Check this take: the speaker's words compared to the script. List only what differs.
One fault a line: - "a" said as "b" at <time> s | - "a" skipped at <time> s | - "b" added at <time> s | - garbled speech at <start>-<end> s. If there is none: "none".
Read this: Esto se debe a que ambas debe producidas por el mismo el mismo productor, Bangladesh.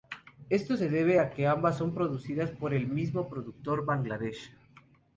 - "debe" said as "son" at 1.8 s
- "el mismo" skipped at 3.3 s